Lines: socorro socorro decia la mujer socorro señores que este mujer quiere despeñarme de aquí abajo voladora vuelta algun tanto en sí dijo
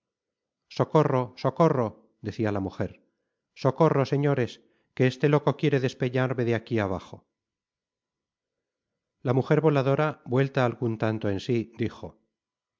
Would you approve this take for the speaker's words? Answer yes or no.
no